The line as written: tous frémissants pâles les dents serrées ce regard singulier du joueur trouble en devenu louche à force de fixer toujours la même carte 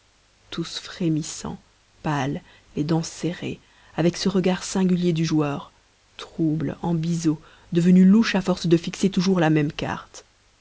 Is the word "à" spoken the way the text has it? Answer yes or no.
yes